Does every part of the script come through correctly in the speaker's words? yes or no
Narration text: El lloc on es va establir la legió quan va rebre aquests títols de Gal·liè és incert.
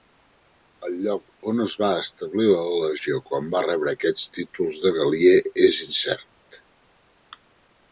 yes